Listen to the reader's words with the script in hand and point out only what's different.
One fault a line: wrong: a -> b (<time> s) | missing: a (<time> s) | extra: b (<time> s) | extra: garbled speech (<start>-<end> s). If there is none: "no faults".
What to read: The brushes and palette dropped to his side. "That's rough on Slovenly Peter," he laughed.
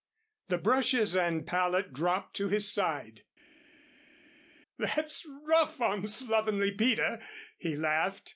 no faults